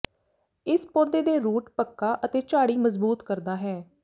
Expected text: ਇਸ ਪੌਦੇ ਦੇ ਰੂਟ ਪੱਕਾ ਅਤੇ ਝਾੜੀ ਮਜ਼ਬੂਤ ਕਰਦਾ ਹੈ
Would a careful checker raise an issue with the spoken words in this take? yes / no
no